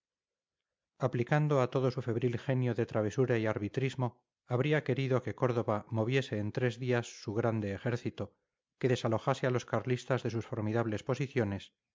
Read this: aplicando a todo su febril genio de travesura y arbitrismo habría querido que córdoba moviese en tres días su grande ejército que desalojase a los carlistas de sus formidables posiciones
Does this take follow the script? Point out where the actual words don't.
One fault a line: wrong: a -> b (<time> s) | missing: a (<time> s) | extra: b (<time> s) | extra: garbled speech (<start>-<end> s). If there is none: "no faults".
no faults